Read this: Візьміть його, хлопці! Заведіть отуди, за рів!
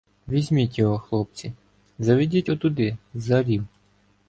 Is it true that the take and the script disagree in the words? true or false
false